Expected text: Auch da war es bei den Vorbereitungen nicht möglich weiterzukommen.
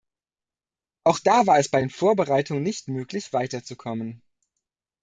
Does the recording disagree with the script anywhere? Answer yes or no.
no